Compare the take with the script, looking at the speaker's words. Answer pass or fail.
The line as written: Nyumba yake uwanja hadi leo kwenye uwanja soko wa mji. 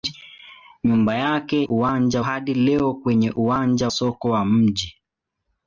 pass